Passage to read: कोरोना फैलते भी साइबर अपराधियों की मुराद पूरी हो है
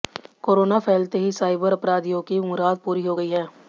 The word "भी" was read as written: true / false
false